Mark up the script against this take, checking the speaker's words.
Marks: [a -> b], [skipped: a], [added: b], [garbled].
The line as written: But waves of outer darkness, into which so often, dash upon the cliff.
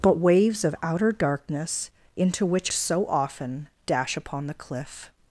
But waves of outer darkness, into which so often, dash upon the cliff.